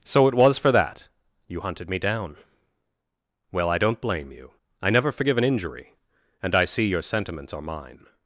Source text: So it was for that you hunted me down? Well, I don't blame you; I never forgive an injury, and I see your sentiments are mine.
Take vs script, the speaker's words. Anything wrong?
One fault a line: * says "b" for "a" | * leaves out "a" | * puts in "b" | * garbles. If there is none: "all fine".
all fine